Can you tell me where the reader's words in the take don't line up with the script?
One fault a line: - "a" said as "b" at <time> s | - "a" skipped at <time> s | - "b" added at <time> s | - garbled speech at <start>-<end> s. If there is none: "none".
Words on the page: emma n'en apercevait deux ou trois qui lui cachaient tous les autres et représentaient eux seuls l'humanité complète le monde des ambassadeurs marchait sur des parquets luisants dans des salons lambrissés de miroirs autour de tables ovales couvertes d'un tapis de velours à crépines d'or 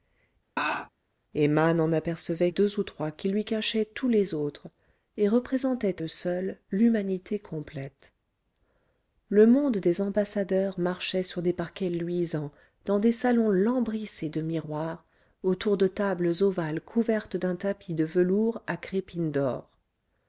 none